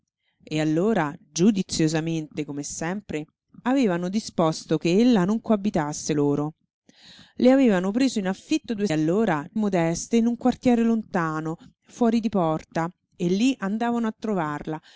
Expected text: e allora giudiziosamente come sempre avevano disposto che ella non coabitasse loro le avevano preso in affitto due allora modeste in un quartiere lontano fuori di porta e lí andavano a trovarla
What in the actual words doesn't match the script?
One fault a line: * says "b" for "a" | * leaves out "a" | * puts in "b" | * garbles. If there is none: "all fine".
all fine